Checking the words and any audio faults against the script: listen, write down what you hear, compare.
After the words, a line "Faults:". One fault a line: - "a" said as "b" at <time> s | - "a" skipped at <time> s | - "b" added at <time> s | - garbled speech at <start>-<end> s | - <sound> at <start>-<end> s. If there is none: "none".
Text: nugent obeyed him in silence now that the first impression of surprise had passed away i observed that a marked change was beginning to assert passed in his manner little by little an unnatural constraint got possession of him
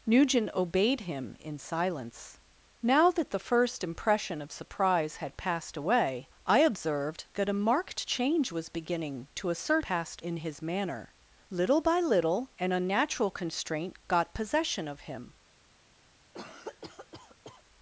nugent obeyed him in silence now that the first impression of surprise had passed away i observed that a marked change was beginning to assert passed in his manner little by little an unnatural constraint got possession of him
Faults:
- cough at 16.3-17.6 s